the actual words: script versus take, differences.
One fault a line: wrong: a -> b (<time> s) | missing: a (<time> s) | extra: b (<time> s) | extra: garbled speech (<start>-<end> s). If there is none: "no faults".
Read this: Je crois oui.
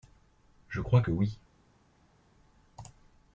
extra: que (1.0 s)